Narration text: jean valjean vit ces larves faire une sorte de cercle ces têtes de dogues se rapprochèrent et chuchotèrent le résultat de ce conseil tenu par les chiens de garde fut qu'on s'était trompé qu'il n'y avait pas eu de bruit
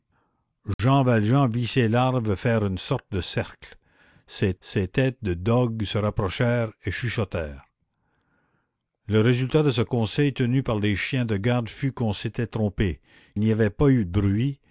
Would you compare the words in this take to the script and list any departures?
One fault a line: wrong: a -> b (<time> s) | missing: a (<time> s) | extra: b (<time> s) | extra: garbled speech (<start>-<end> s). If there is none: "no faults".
extra: ces (4.6 s)
missing: qu'il (13.0 s)